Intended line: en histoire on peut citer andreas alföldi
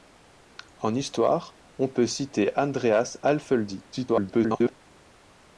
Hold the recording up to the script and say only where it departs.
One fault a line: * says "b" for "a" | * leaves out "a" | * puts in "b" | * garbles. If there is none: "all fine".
* garbles